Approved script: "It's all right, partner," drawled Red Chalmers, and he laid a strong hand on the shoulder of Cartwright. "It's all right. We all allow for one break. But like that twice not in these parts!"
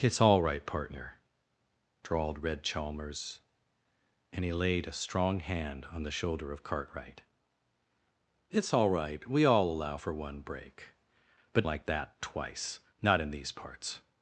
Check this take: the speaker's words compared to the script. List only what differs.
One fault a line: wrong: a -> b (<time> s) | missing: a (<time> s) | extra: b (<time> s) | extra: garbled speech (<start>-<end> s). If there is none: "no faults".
no faults